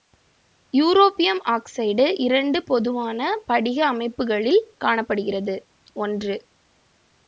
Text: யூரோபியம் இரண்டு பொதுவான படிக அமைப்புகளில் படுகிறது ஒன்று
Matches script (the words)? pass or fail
fail